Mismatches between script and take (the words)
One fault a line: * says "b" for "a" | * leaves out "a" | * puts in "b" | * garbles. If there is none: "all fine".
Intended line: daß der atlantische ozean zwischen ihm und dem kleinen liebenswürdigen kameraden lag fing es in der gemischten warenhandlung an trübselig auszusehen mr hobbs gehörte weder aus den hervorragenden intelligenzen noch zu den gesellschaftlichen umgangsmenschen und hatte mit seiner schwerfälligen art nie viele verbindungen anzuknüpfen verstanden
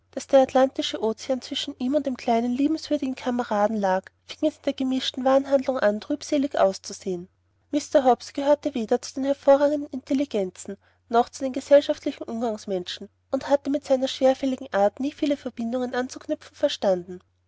* says "zu" for "aus"